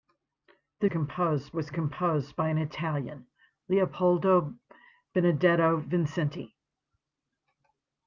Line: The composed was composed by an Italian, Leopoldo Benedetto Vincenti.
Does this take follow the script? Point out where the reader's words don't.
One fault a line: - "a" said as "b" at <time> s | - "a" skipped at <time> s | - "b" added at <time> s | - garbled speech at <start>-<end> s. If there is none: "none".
none